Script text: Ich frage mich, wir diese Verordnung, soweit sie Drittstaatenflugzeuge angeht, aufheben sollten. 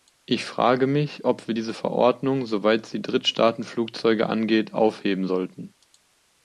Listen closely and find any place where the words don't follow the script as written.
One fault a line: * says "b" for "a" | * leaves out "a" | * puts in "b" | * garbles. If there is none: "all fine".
* puts in "ob"